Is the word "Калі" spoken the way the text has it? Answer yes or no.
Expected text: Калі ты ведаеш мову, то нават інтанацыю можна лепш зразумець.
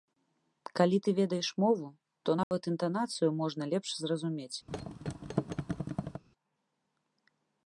yes